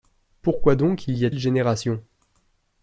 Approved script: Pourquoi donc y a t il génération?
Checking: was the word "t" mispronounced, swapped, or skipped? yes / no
yes